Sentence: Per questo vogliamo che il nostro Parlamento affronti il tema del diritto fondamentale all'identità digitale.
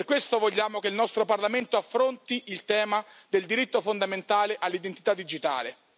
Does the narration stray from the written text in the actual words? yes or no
no